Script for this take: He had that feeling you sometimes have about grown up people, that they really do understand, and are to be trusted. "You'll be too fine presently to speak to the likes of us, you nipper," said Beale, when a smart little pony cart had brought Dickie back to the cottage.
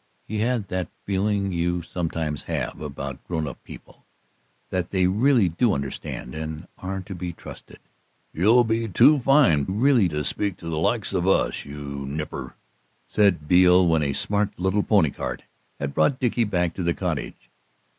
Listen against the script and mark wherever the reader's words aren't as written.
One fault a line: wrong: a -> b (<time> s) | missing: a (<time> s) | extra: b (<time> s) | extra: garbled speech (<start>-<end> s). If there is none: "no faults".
wrong: presently -> really (9.6 s)